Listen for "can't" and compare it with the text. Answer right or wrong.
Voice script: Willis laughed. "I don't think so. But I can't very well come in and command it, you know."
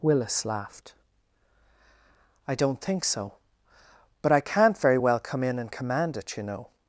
right